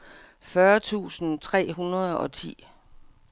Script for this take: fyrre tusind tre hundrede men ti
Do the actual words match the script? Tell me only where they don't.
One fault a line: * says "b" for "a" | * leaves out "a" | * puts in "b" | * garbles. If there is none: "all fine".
* says "og" for "men"